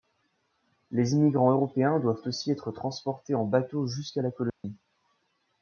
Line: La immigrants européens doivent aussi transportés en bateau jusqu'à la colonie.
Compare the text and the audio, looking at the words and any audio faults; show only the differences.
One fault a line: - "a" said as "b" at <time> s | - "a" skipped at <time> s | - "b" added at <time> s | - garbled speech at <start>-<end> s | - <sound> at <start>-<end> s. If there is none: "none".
- "La" said as "Les" at 0.9 s
- "être" added at 2.5 s
- dropout at 4.5-4.6 s